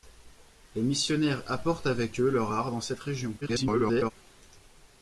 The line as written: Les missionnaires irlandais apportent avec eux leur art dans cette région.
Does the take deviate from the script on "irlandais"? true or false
true